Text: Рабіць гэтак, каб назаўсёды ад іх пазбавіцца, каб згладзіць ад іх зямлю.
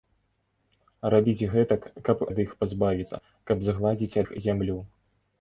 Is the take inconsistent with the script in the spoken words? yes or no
yes